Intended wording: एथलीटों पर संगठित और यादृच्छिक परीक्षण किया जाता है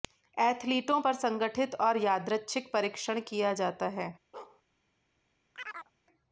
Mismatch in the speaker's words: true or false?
false